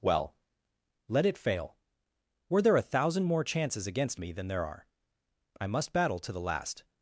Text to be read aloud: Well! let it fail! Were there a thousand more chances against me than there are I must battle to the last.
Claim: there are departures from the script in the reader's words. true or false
false